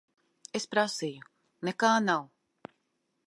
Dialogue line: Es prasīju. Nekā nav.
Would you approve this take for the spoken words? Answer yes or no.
yes